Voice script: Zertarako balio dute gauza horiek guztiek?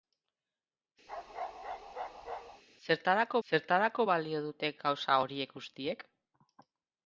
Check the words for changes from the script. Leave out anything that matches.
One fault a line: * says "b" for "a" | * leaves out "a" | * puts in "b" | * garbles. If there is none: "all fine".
* puts in "zertarako"